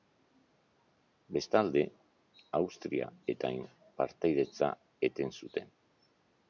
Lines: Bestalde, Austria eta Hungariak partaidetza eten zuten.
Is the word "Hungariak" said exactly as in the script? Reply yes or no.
no